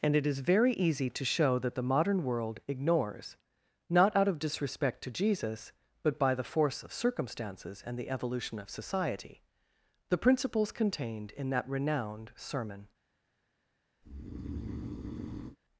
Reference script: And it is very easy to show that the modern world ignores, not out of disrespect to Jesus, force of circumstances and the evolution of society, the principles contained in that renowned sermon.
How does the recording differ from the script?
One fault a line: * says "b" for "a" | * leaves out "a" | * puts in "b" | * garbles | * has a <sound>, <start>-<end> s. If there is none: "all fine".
* puts in "but by the"
* has a breath, 14.0-15.6 s